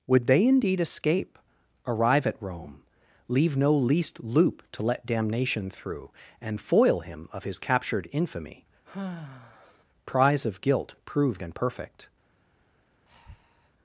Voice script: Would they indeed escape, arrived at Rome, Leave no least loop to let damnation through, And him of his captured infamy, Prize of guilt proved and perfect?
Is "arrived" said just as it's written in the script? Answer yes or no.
no